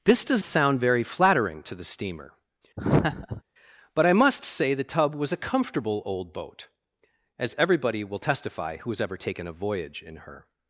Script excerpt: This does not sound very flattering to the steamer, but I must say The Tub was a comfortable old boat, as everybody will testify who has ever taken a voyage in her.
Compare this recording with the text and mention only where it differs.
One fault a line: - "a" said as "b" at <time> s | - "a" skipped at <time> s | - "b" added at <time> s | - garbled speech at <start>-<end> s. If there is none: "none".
- "not" skipped at 0.4 s